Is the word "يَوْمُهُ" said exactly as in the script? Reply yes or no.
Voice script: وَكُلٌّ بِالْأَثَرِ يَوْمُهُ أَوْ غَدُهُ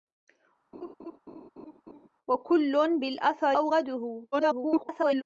no